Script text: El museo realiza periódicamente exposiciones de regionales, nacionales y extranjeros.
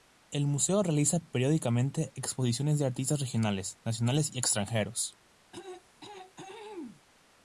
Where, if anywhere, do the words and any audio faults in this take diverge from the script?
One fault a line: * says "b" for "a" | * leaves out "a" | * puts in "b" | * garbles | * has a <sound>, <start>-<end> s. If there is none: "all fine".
* puts in "artistas"
* has a throat clearing, 5.5-7.0 s